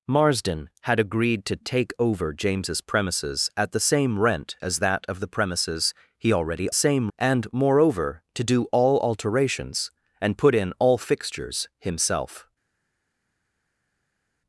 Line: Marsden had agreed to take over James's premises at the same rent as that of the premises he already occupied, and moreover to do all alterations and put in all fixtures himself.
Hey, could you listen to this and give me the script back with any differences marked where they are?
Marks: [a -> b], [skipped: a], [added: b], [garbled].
Marsden had agreed to take over James's premises at the same rent as that of the premises he already [occupied, -> same] and moreover to do all alterations and put in all fixtures himself.